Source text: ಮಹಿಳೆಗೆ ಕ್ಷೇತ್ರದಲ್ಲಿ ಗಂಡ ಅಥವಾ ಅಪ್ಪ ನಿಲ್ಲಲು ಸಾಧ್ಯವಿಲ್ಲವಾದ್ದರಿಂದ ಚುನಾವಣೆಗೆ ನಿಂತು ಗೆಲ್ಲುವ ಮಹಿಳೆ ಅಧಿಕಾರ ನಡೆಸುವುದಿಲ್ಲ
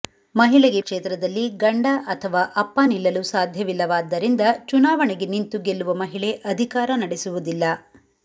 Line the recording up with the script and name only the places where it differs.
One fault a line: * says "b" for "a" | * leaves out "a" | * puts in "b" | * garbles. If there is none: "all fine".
all fine